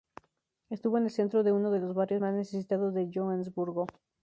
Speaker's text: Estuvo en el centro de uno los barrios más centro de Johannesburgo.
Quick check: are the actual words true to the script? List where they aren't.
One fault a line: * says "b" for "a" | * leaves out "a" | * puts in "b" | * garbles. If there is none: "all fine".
* puts in "de"
* says "necesitados" for "centro"